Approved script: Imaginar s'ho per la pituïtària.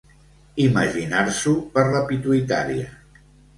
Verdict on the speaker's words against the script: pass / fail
pass